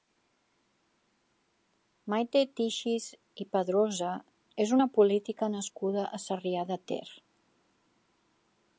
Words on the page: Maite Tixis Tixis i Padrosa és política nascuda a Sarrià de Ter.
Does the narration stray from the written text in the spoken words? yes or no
yes